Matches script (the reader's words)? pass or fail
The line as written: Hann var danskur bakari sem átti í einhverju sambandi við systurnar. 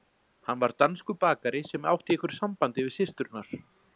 pass